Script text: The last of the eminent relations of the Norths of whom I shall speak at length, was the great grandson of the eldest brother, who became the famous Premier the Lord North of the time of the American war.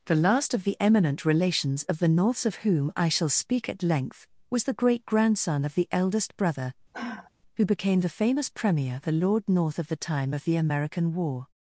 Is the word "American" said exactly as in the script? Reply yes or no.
yes